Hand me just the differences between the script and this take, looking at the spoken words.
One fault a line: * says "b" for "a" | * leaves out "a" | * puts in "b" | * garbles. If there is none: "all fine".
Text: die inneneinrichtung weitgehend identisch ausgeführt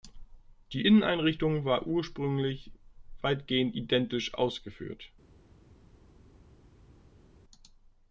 * puts in "war ursprünglich"